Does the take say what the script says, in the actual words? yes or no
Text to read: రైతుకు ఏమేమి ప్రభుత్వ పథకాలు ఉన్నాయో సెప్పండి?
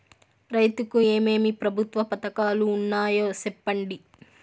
yes